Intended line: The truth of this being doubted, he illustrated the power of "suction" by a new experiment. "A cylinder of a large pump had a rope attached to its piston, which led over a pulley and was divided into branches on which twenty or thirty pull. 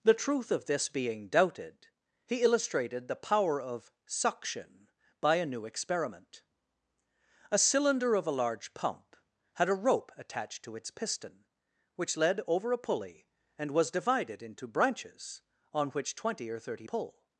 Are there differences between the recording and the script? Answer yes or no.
no